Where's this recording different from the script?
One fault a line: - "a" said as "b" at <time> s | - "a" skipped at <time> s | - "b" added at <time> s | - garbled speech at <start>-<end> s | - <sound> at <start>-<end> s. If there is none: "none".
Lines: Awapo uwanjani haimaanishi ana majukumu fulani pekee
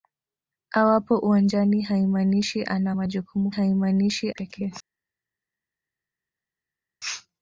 - "fulani" said as "haimaanishi" at 3.5 s